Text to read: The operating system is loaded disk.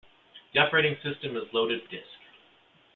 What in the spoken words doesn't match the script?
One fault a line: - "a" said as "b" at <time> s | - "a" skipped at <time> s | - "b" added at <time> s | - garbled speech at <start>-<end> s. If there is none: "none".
none